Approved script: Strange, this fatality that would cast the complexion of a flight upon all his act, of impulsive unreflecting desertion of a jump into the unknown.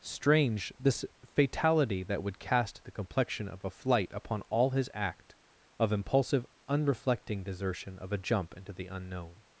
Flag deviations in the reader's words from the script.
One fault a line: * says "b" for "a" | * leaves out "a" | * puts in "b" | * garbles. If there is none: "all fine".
all fine